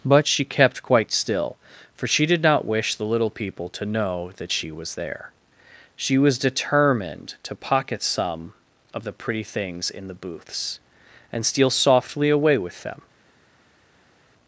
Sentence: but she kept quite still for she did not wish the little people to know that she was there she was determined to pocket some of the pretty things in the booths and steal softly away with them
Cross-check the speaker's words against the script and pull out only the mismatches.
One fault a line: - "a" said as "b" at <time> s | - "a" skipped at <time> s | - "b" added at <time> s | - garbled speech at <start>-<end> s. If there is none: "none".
none